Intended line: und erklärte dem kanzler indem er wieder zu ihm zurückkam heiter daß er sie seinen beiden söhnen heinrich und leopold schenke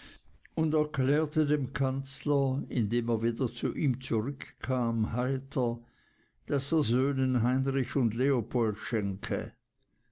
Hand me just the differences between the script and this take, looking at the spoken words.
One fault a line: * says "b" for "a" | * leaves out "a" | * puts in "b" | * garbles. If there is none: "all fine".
* leaves out "sie seinen beiden"